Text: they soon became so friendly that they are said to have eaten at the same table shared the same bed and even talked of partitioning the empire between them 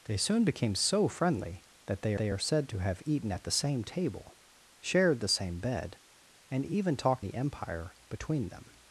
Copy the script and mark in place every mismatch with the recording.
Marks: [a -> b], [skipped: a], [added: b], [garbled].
they soon became so friendly that they [added: they] are said to have eaten at the same table shared the same bed and even talked [skipped: of partitioning] the empire between them